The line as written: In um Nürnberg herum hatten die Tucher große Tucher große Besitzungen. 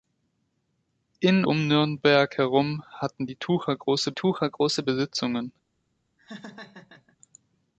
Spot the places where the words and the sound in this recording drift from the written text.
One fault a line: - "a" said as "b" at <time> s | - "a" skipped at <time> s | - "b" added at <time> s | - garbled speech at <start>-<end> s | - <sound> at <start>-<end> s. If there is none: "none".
- laugh at 6.2-7.2 s